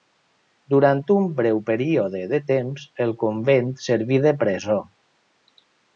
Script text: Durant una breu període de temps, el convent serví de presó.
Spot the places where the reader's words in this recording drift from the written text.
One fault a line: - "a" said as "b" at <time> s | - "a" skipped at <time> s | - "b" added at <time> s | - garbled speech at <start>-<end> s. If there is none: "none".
- "una" said as "un" at 1.1 s